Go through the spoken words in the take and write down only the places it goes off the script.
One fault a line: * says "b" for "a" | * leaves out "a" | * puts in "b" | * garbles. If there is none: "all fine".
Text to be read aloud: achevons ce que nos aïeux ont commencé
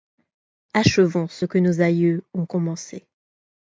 all fine